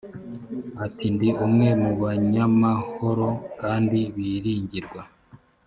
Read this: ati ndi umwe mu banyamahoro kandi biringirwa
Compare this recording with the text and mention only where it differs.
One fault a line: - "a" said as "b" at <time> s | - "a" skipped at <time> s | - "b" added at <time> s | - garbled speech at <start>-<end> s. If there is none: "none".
none